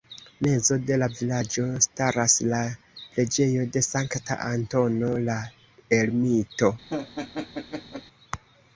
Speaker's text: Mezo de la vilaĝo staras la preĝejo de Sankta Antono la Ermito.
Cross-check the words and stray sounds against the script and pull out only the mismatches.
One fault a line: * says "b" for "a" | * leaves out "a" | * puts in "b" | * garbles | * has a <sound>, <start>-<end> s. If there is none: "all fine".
* has a laugh, 6.9-8.0 s